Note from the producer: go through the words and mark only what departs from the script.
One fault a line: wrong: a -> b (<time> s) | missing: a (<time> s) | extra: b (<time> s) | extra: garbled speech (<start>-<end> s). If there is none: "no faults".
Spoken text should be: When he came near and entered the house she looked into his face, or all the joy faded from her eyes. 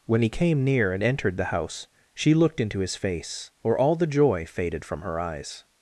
no faults